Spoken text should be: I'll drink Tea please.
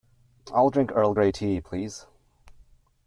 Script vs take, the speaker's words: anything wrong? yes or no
yes